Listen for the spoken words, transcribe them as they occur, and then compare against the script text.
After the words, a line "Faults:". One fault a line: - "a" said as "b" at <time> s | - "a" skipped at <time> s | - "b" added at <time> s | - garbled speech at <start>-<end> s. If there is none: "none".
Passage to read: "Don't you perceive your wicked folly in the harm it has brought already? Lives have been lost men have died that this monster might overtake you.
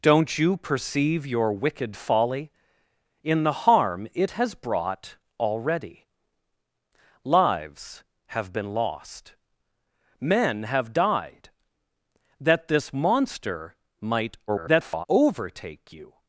"Don't you perceive your wicked folly in the harm it has brought already? Lives have been lost men have died that this monster might [garbled] overtake you.
Faults:
- garbled speech at 14.5-15.1 s